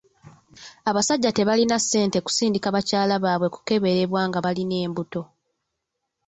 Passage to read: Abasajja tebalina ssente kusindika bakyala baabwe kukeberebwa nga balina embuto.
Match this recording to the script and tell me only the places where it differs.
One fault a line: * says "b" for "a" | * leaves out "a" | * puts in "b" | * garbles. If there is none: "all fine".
all fine